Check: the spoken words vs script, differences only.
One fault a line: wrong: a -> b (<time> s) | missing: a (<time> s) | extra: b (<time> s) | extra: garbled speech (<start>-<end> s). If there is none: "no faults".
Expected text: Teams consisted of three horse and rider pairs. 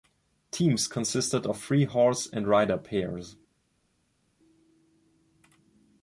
no faults